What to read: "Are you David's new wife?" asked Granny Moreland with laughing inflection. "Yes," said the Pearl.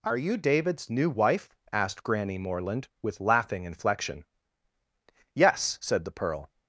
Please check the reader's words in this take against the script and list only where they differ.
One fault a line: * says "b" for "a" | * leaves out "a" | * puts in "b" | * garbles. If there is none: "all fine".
all fine